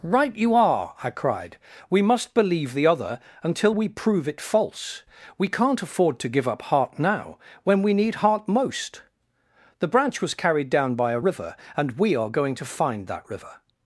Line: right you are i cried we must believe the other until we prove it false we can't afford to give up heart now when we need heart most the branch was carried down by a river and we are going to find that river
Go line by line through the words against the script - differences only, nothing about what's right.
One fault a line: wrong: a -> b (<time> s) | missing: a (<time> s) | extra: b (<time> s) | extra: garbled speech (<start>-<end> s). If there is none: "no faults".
no faults